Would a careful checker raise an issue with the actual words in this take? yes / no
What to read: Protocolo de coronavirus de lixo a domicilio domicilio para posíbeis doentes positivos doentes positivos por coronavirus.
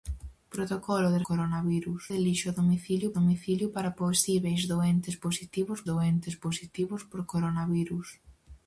no